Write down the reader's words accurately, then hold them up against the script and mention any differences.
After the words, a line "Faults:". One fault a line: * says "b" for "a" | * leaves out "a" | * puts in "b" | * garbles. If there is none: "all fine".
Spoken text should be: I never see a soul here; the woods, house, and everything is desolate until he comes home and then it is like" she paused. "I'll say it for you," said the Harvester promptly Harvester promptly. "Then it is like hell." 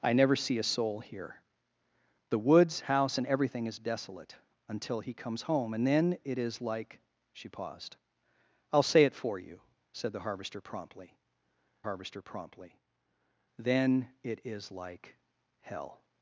I never see a soul here; the woods, house, and everything is desolate until he comes home and then it is like" she paused. "I'll say it for you," said the Harvester promptly Harvester promptly. "Then it is like hell."
Faults:
all fine